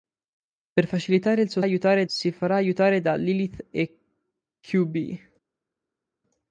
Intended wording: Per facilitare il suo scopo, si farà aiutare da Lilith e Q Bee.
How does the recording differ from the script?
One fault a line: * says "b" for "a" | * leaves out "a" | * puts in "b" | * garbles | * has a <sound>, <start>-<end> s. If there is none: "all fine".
* says "aiutare" for "scopo"